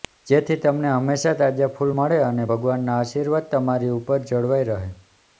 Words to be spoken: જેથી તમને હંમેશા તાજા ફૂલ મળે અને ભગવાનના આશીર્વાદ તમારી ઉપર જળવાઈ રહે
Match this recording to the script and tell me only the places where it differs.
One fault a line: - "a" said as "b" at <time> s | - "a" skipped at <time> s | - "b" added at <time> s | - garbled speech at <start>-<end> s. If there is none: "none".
none